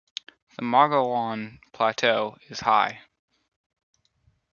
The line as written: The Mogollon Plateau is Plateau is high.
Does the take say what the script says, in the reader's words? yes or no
no